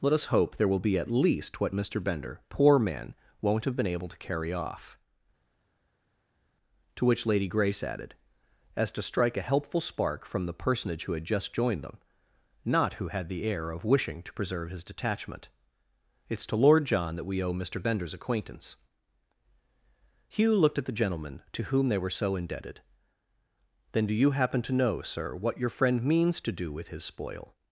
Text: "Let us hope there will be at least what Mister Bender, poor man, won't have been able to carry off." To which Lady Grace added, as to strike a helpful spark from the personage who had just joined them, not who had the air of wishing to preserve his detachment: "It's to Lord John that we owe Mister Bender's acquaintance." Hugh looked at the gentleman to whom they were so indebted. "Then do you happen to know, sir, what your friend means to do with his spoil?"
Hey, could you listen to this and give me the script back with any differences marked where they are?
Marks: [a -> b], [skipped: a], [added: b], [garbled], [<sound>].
"Let us hope there will be at least what Mister Bender, poor man, won't have been able to carry off." To which Lady Grace added, as to strike a helpful spark from the personage who had just joined them, not who had the air of wishing to preserve his detachment: "It's to Lord John that we owe Mister Bender's acquaintance." Hugh looked at the gentleman to whom they were so indebted. "Then do you happen to know, sir, what your friend means to do with his spoil?"